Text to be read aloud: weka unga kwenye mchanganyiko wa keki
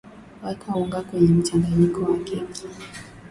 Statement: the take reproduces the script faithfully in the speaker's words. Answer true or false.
true